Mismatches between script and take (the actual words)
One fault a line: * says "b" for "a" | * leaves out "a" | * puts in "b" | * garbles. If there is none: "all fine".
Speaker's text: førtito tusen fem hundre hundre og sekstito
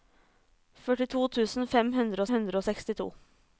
all fine